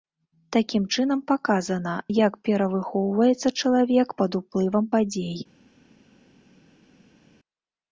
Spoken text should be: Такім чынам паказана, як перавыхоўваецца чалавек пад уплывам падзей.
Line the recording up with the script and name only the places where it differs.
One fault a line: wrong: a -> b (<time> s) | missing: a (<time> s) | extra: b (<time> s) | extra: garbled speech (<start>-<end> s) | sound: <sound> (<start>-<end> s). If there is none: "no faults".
no faults